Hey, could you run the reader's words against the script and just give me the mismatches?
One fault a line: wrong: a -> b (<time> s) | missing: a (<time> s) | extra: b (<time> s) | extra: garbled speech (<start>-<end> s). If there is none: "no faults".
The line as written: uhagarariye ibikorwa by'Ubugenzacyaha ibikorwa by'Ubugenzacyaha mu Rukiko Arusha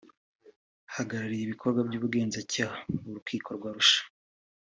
missing: ibikorwa by'Ubugenzacyaha (2.8 s)
extra: rwa (3.6 s)